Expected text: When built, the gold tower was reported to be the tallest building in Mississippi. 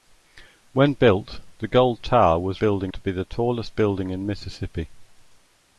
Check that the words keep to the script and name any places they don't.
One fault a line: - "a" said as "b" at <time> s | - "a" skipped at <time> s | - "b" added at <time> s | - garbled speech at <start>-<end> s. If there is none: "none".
- "reported" said as "building" at 2.6 s